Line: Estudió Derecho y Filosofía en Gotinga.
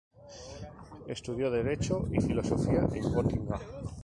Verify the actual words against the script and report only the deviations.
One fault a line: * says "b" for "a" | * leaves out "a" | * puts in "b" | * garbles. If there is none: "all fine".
all fine